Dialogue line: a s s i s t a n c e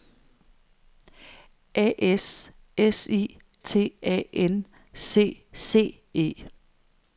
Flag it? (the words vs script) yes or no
yes